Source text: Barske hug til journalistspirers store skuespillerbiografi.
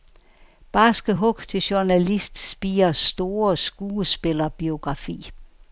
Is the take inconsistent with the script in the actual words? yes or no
no